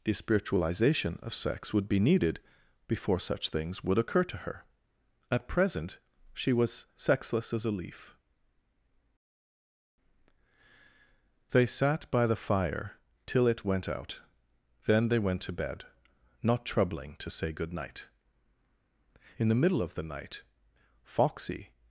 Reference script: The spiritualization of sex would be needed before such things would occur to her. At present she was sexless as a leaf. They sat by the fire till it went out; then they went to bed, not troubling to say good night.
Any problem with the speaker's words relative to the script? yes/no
yes